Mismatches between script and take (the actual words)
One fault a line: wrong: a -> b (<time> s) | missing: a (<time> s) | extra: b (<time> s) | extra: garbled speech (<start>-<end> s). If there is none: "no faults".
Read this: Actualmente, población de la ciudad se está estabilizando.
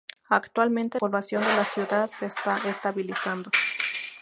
no faults